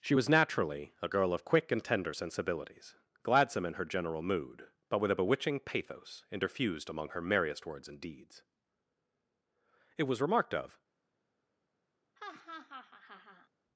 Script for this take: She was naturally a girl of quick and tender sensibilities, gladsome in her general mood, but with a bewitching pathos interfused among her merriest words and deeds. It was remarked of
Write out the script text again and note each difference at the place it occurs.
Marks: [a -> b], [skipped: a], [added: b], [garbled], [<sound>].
She was naturally a girl of quick and tender sensibilities, gladsome in her general mood, but with a bewitching pathos interfused among her merriest words and deeds. It was remarked of [laugh]